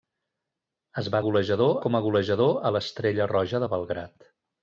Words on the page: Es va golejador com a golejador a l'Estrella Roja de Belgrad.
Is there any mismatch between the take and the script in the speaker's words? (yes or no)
no